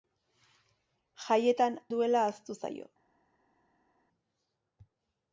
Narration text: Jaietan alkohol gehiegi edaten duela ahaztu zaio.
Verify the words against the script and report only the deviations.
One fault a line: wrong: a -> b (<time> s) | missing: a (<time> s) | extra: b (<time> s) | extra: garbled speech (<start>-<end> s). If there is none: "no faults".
missing: alkohol gehiegi edaten (1.8 s)